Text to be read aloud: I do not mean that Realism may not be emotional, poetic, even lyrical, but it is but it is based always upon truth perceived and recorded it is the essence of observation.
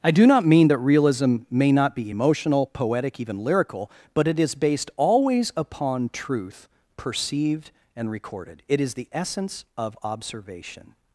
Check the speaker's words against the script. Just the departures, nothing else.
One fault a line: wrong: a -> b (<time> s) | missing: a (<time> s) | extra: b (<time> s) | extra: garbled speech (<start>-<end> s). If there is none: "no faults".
missing: but it is (4.5 s)